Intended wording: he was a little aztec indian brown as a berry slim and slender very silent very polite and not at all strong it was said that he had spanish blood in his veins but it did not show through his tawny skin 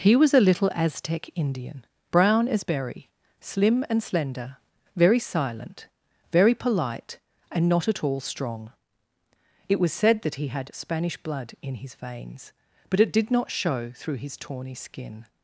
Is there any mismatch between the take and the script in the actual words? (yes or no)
yes